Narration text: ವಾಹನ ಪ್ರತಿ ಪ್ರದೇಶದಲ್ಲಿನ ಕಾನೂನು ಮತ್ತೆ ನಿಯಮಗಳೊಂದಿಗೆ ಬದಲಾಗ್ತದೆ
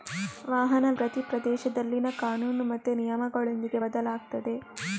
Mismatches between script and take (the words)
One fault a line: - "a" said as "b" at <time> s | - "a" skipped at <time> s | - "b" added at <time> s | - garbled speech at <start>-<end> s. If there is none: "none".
none